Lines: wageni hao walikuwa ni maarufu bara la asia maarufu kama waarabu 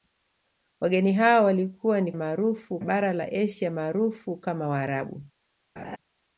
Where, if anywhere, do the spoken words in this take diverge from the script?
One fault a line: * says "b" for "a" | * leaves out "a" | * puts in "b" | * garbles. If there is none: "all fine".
all fine